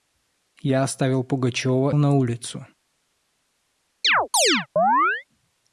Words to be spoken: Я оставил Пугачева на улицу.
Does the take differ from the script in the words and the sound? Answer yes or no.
yes